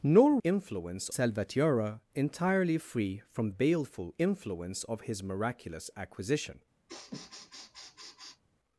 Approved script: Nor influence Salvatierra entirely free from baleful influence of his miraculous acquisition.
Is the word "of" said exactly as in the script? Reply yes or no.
yes